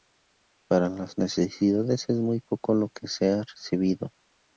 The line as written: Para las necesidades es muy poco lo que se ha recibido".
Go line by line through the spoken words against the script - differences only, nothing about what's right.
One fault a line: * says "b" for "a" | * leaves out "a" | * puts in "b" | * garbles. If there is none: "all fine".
all fine